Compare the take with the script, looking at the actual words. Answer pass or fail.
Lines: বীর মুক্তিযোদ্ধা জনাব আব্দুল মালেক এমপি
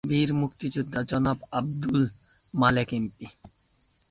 pass